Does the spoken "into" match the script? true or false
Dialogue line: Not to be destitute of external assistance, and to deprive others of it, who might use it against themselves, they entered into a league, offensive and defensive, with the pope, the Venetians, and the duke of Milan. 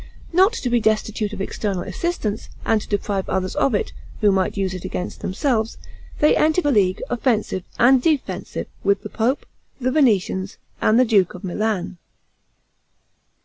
false